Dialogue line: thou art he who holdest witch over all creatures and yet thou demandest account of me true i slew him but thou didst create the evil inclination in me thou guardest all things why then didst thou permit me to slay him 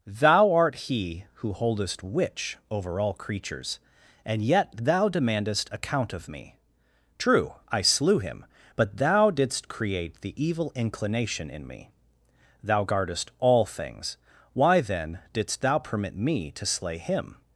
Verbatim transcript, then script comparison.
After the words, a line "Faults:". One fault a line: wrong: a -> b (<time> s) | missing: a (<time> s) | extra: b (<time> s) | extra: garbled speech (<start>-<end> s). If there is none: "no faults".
thou art he who holdest witch over all creatures and yet thou demandest account of me true i slew him but thou didst create the evil inclination in me thou guardest all things why then didst thou permit me to slay him
Faults:
no faults